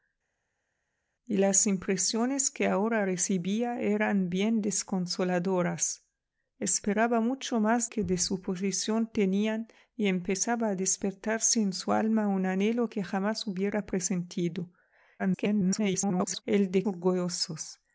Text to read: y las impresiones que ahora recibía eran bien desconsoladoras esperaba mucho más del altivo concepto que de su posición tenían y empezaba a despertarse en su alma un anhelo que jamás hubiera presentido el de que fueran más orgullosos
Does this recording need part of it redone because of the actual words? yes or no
yes